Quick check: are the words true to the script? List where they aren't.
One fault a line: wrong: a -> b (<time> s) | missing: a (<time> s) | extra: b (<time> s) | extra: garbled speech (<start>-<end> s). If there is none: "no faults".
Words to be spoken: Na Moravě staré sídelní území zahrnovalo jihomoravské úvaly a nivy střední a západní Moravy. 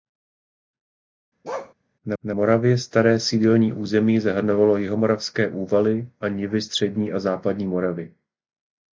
extra: na (2.2 s)